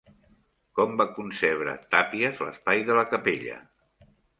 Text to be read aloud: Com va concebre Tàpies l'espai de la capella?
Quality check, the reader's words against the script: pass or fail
pass